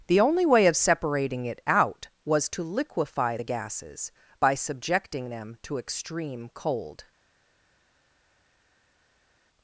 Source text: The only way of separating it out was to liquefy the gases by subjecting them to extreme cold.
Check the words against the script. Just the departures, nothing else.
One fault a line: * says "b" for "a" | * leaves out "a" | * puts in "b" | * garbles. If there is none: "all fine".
all fine